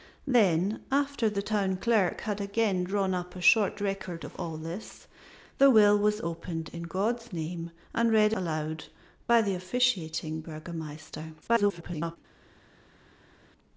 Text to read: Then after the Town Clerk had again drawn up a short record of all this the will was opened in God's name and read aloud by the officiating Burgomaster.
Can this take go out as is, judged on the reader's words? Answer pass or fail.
fail